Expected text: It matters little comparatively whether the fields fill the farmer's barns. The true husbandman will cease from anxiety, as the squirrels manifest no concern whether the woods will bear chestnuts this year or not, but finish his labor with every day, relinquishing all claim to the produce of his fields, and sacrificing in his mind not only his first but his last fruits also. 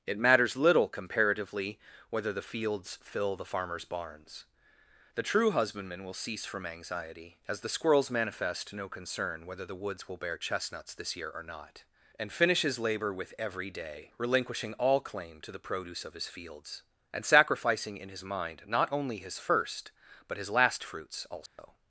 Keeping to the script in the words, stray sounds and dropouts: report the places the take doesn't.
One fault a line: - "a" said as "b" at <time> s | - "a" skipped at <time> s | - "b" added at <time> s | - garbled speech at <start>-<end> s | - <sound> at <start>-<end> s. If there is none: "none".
- "but" said as "and" at 12.2 s
- dropout at 21.5-21.6 s